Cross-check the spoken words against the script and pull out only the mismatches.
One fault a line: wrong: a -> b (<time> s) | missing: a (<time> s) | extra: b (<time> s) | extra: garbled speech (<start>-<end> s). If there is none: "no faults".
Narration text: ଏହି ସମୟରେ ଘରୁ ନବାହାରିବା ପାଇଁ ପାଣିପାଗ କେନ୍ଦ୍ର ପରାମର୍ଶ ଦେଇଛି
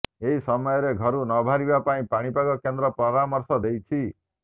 no faults